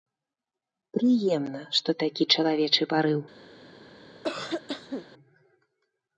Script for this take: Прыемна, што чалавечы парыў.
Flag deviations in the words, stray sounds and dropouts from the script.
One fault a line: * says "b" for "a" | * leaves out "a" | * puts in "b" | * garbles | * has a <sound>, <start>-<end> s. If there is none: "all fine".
* puts in "такі"
* has a cough, 4.1-5.1 s